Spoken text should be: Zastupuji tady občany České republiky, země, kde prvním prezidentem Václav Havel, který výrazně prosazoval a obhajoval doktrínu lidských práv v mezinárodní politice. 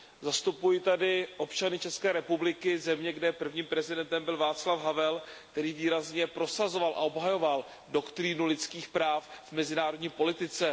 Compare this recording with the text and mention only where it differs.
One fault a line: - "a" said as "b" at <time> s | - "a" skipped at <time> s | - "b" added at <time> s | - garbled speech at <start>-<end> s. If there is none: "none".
- "byl" added at 4.2 s